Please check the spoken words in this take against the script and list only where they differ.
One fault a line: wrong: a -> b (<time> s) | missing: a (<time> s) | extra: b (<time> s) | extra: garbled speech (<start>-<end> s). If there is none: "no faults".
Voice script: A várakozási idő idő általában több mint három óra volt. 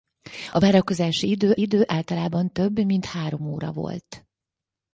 no faults